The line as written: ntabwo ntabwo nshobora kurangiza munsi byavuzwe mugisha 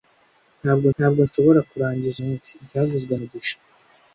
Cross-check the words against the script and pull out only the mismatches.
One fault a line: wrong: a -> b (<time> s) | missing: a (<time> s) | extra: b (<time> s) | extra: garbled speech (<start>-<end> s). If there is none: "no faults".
no faults